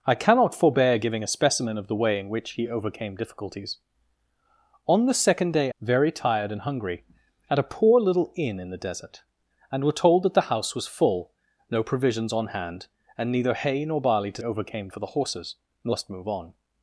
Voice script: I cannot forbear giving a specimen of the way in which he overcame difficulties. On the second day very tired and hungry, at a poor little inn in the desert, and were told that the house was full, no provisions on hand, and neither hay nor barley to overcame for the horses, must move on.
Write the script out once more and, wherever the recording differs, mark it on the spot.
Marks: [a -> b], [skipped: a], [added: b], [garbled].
I cannot forbear giving a specimen of the way in which he overcame difficulties. On the second day very tired and hungry, at a poor little inn in the desert, and were told that the house was full, no provisions on hand, and neither hay nor barley to overcame for the horses, must move on.